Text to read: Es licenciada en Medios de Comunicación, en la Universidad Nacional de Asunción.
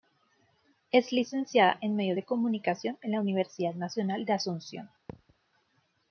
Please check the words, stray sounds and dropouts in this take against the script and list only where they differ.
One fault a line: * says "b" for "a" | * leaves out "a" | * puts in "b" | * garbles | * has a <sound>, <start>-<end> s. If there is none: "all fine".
* has a thud, 5.1-5.4 s